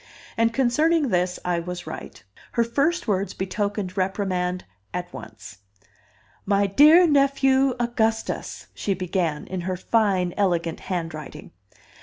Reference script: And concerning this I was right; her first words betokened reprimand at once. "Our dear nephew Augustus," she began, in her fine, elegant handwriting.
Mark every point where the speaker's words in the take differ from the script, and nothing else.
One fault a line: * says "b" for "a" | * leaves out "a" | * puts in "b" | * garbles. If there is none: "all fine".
* says "My" for "Our"